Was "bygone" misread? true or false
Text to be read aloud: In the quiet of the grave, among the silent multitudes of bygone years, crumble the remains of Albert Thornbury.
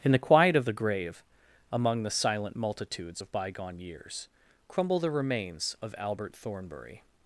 false